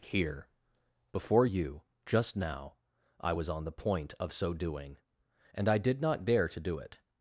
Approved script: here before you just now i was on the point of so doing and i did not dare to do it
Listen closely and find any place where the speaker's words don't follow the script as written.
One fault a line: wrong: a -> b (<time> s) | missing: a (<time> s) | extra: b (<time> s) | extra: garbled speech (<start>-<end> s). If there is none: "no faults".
no faults